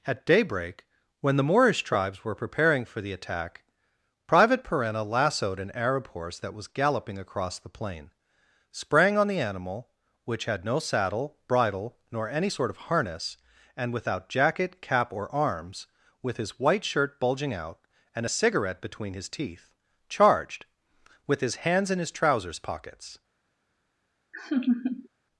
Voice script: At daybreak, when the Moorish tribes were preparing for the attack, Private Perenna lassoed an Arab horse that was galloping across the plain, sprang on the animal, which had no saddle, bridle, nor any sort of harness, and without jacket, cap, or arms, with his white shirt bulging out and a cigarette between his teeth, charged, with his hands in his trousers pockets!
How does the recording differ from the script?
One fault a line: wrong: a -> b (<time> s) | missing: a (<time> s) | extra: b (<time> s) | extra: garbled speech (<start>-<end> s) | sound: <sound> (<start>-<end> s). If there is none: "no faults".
sound: laugh (24.3-25.1 s)